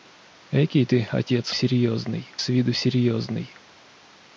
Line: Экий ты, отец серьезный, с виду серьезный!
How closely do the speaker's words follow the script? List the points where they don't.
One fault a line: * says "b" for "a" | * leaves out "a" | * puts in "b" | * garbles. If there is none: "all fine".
all fine